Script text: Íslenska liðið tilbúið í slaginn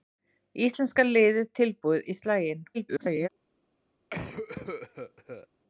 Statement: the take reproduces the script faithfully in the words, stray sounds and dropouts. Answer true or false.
false